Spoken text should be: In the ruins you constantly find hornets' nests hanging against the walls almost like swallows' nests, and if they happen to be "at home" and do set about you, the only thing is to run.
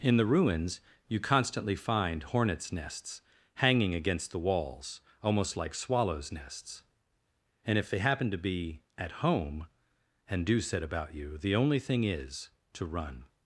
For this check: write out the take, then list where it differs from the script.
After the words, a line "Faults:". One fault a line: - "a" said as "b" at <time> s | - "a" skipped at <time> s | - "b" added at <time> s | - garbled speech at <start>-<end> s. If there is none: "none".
In the ruins you constantly find hornets' nests hanging against the walls almost like swallows' nests, and if they happen to be "at home" and do set about you, the only thing is to run.
Faults:
none